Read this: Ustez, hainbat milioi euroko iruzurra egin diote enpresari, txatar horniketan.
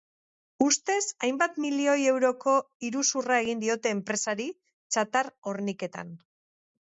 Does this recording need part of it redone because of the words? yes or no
no